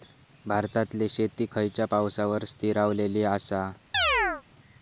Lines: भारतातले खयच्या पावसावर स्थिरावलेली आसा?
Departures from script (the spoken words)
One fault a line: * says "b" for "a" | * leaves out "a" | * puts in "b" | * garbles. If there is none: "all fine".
* puts in "शेती"